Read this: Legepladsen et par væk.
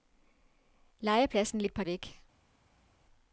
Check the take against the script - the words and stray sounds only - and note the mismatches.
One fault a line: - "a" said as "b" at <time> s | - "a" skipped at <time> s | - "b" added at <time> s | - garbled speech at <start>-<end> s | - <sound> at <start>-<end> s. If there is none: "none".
none